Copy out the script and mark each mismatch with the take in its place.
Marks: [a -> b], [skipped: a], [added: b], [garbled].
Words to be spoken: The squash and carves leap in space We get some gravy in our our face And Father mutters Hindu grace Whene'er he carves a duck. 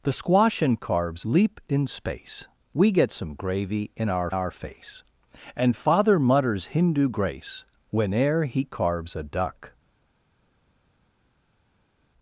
The squash and carves leap in space We get some gravy in our our face And Father mutters Hindu grace Whene'er he carves a duck.